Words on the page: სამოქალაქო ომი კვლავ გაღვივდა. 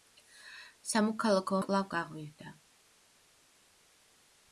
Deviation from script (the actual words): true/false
true